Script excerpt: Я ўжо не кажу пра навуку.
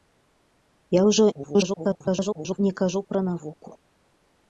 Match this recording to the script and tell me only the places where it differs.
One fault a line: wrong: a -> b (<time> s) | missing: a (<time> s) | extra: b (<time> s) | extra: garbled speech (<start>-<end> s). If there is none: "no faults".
extra: garbled speech (1.3-2.6 s)